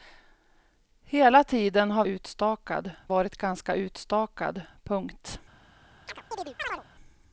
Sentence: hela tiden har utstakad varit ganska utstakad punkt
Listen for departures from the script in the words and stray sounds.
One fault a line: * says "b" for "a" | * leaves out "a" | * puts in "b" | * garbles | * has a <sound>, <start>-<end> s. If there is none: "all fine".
* has a chirp, 6.1-6.8 s